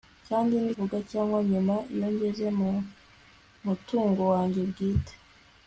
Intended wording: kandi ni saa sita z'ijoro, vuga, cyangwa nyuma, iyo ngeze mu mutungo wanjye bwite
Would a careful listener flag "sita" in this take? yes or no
yes